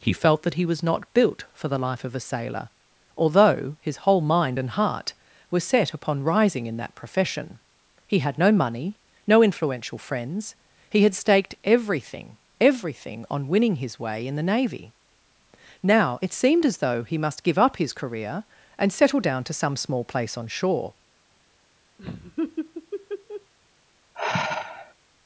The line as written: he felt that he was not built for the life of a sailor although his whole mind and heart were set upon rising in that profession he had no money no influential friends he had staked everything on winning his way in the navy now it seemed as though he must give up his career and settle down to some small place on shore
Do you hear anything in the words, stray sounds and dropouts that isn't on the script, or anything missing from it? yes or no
yes